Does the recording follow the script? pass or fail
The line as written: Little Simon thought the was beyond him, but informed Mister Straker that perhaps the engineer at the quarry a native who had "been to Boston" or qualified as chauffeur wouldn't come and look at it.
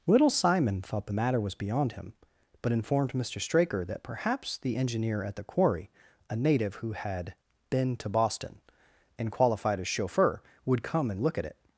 fail